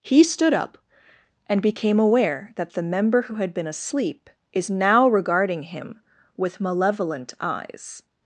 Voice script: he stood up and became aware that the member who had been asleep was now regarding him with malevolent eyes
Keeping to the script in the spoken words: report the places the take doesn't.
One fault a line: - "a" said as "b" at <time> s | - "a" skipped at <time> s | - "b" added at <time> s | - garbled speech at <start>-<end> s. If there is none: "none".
- "was" said as "is" at 4.5 s